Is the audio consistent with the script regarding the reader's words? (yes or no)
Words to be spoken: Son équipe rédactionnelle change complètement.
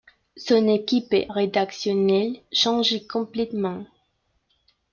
yes